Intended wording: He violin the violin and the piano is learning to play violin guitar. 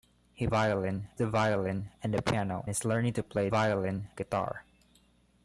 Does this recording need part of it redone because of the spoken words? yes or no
no